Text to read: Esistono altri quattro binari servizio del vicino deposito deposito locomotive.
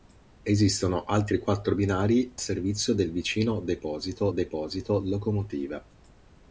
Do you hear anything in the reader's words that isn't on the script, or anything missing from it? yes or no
no